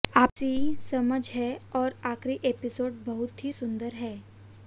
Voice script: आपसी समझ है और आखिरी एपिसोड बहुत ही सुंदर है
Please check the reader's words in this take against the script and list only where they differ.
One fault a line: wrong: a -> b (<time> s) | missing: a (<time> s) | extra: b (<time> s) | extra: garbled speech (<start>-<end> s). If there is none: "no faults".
no faults